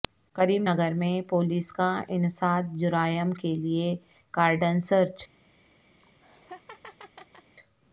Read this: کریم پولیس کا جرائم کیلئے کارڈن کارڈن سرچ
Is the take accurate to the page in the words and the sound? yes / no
no